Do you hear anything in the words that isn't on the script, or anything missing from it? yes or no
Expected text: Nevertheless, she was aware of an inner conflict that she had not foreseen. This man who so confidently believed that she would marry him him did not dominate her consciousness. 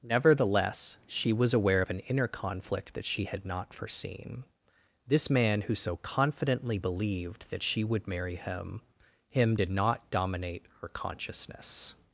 no